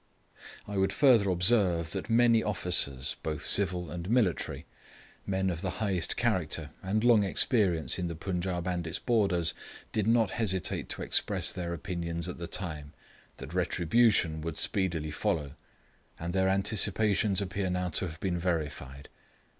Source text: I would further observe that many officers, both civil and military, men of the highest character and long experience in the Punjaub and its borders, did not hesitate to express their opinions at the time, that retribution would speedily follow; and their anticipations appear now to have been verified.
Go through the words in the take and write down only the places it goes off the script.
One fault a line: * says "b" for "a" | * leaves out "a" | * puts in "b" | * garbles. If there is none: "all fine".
all fine